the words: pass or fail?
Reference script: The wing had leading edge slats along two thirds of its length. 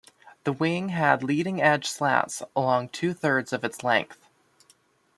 pass